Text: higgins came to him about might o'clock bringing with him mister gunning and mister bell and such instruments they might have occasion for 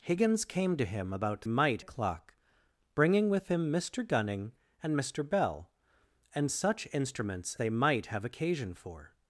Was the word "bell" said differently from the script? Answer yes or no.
no